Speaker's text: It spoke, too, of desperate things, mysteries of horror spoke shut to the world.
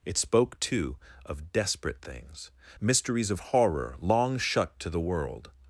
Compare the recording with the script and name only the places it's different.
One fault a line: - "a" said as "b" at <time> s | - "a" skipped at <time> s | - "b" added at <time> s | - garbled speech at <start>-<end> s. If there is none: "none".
- "spoke" said as "long" at 4.0 s